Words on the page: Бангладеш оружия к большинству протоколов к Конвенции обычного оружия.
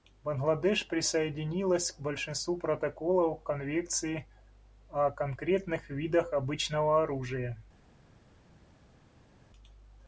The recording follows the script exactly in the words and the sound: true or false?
false